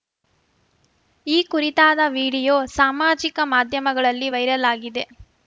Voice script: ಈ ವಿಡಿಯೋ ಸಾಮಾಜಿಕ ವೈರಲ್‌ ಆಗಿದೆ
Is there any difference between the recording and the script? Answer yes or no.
yes